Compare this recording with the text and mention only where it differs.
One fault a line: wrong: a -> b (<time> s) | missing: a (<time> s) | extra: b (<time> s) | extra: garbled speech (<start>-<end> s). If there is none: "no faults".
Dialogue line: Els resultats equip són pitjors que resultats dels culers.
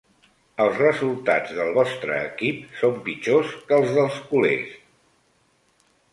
extra: del vostre (1.6 s)
wrong: resultats -> els (3.8 s)